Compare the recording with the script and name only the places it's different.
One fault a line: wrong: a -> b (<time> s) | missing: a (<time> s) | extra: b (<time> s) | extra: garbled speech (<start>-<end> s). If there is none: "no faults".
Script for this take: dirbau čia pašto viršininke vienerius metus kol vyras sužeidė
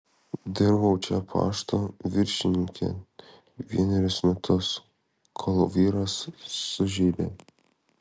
no faults